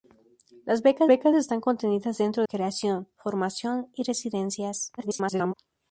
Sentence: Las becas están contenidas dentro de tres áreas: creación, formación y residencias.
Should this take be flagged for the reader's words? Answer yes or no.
yes